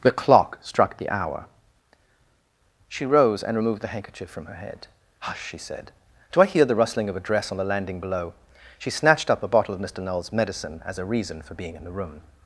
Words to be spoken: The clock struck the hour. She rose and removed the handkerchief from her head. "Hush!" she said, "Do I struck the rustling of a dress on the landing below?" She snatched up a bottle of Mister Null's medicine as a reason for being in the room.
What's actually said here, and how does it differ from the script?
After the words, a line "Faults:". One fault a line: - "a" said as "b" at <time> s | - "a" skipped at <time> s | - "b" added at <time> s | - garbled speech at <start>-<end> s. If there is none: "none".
The clock struck the hour. She rose and removed the handkerchief from her head. "Hush!" she said, "Do I hear the rustling of a dress on the landing below?" She snatched up a bottle of Mister Null's medicine as a reason for being in the room.
Faults:
- "struck" said as "hear" at 6.5 s